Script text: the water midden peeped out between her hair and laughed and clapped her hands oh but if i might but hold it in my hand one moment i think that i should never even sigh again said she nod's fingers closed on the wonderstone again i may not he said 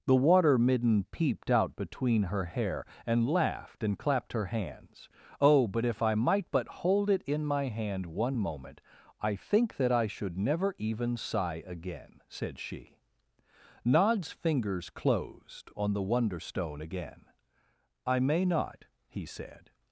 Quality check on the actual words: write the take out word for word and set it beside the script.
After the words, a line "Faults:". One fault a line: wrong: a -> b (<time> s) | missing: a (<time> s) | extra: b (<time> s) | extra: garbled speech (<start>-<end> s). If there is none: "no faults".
the water midden peeped out between her hair and laughed and clapped her hands oh but if i might but hold it in my hand one moment i think that i should never even sigh again said she nod's fingers closed on the wonderstone again i may not he said
Faults:
no faults